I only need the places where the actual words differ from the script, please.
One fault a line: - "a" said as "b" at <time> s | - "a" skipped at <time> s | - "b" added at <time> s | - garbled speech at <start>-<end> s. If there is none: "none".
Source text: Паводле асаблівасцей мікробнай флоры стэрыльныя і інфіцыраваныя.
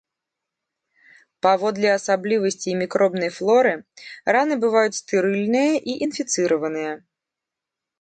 - "раны бываюць" added at 4.4 s